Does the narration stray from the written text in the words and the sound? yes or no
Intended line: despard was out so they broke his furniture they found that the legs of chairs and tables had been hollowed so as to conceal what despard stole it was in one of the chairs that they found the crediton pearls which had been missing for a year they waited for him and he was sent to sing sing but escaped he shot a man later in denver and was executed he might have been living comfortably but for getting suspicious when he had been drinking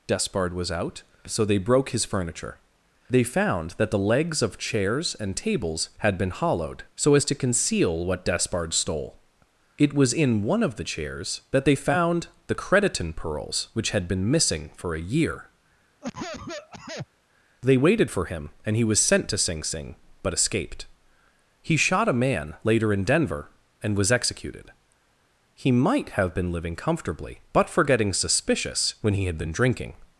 yes